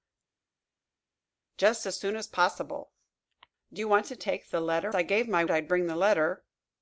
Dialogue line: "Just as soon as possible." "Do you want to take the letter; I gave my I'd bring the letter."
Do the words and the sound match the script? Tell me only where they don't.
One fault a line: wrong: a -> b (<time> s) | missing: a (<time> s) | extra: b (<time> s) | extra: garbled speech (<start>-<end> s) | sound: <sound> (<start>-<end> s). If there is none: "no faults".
no faults